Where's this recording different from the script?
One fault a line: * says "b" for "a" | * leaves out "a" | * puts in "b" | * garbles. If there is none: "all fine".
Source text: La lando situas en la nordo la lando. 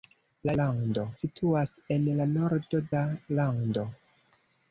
all fine